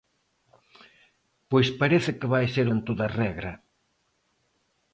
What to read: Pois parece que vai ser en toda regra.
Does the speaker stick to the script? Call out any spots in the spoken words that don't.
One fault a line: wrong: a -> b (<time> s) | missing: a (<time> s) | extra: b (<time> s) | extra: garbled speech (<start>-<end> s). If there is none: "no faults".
no faults